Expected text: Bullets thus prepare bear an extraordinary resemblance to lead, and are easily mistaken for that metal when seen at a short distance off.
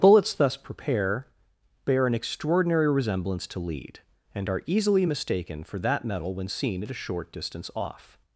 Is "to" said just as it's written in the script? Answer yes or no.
yes